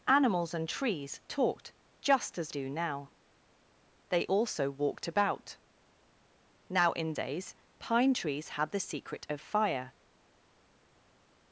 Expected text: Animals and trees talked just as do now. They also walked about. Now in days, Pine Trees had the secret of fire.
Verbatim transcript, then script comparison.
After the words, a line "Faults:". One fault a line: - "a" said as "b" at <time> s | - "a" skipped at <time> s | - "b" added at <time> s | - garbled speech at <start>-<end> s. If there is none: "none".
Animals and trees talked just as do now. They also walked about. Now in days, Pine Trees had the secret of fire.
Faults:
none